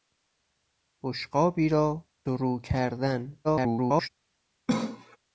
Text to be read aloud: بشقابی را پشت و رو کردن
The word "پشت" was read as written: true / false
false